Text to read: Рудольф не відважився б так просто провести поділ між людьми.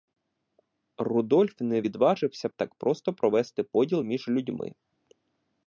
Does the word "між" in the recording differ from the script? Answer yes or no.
no